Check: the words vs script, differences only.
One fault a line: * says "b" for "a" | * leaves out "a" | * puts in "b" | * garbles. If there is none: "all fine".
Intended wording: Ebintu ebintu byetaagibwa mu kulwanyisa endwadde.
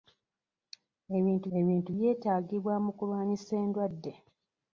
all fine